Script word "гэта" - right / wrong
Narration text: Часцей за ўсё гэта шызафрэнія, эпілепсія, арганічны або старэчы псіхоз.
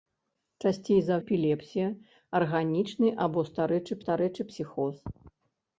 wrong